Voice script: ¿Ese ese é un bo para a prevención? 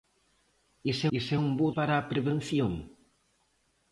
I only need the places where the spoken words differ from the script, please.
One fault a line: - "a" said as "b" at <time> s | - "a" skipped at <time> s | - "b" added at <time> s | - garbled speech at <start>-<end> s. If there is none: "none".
none